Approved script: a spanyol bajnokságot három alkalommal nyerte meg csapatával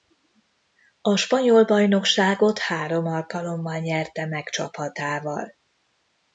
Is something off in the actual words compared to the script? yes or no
no